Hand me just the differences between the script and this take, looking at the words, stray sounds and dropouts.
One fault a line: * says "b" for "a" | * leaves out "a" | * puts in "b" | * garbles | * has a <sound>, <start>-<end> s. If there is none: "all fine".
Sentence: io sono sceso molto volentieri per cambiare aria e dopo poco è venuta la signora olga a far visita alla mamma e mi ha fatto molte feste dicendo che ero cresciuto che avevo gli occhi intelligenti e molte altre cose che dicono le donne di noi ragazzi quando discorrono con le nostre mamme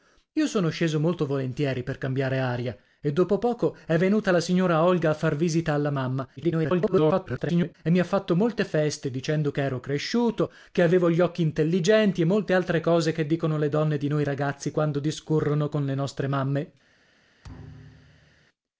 * garbles
* has a thud, 17.4-18.5 s